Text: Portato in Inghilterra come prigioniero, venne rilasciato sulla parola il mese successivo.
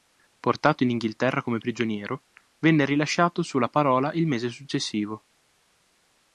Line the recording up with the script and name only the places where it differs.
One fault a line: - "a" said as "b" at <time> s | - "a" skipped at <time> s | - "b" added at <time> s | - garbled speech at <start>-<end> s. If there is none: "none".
none